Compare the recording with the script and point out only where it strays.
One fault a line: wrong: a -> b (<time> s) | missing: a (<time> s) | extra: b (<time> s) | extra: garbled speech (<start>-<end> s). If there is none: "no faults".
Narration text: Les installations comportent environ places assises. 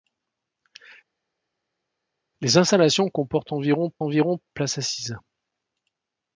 extra: environ (4.0 s)